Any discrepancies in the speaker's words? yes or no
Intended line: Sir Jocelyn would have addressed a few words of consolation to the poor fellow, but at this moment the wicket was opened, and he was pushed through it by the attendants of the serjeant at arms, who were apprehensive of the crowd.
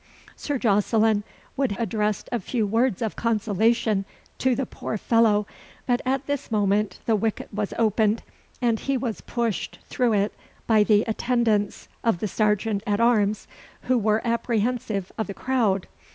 yes